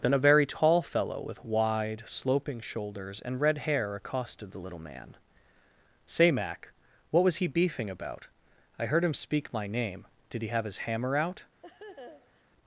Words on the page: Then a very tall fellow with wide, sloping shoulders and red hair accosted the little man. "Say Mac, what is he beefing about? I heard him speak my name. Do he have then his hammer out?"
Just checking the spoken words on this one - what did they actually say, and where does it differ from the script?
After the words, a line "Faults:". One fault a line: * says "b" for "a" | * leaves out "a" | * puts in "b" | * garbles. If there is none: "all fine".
Then a very tall fellow with wide, sloping shoulders and red hair accosted the little man. "Say Mac, what was he beefing about? I heard him speak my name. Did he have his hammer out?"
Faults:
* says "was" for "is"
* says "Did" for "Do"
* leaves out "then"